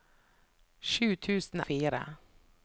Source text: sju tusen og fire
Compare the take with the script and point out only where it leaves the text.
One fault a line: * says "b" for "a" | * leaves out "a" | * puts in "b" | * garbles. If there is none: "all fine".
all fine